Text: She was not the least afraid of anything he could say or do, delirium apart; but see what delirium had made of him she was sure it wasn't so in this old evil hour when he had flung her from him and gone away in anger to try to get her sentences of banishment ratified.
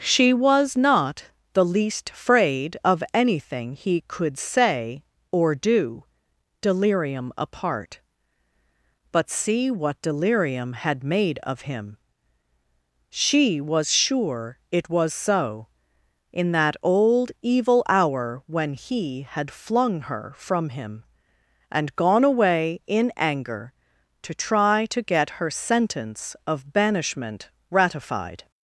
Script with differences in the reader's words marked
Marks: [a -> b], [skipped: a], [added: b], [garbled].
She was not the least afraid of anything he could say or do, delirium apart; but see what delirium had made of him she was sure it [wasn't -> was] so in [this -> that] old evil hour when he had flung her from him and gone away in anger to try to get her [sentences -> sentence] of banishment ratified.